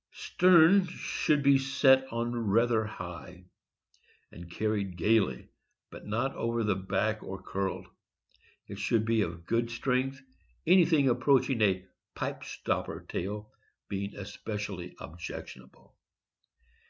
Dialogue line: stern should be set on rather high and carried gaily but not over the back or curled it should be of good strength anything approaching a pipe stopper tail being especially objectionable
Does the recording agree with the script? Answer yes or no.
yes